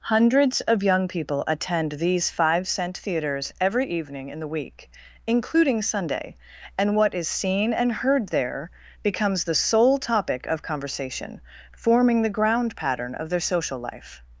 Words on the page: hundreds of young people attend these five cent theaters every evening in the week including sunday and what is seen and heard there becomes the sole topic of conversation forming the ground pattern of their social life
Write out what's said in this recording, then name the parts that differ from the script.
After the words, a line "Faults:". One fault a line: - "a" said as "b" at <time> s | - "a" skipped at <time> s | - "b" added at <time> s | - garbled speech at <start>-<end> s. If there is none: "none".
hundreds of young people attend these five cent theaters every evening in the week including sunday and what is seen and heard there becomes the sole topic of conversation forming the ground pattern of their social life
Faults:
none